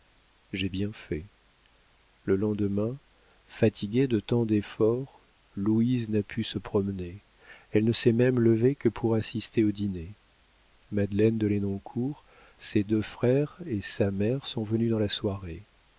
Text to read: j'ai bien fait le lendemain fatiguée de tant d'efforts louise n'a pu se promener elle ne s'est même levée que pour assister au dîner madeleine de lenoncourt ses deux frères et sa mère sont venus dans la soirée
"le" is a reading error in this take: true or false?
false